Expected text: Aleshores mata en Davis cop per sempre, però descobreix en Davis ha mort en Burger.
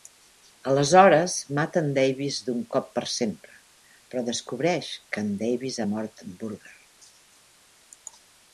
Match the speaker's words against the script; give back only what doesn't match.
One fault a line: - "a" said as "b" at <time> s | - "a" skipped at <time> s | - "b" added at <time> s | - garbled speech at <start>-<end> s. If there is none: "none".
- "d'un" added at 2.5 s
- "que" added at 5.1 s